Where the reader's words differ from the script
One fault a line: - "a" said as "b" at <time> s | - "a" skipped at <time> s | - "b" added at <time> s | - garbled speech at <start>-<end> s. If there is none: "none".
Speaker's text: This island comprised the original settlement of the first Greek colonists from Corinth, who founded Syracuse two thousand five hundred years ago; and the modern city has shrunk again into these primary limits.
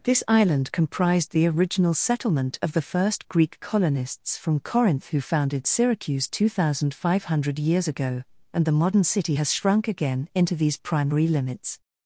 none